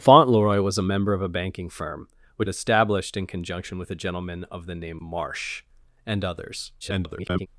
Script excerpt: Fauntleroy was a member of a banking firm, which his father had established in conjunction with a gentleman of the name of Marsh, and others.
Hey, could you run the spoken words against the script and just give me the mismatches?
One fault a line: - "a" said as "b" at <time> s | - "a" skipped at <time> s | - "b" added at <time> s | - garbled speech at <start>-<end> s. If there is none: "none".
- "his father had" skipped at 2.5 s
- "of" skipped at 5.0 s
- garbled speech at 6.8-7.5 s